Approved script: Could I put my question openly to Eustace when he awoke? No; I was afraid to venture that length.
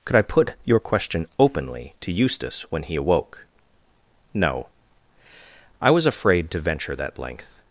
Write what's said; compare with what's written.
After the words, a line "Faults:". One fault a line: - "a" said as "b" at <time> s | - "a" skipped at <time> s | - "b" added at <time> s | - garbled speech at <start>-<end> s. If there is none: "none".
Could I put your question openly to Eustace when he awoke? No; I was afraid to venture that length.
Faults:
- "my" said as "your" at 0.6 s